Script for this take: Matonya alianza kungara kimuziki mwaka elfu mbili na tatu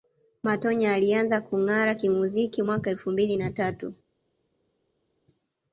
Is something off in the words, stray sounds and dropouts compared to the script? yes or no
no